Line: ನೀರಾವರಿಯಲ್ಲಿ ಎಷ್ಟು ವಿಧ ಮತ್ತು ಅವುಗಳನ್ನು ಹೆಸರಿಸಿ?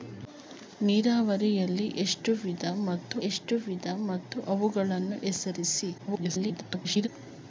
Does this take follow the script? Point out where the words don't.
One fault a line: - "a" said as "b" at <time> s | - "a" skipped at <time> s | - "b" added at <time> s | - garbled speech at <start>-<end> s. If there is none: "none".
- "ಎಷ್ಟು ವಿಧ ಮತ್ತು" added at 3.3 s
- garbled speech at 6.0-7.1 s